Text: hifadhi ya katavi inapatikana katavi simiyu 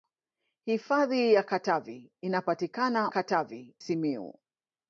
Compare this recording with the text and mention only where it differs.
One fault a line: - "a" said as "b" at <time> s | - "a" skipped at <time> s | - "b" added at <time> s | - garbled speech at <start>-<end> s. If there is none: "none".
none